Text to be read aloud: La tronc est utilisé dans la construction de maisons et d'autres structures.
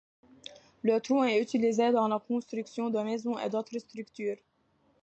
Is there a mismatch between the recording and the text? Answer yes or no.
yes